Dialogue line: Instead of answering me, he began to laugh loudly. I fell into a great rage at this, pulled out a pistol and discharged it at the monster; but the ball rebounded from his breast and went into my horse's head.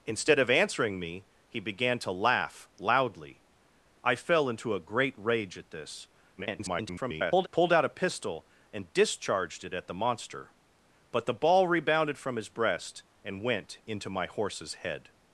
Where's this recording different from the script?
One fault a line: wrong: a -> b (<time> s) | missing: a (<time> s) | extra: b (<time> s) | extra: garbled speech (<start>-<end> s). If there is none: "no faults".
extra: garbled speech (6.4-7.5 s)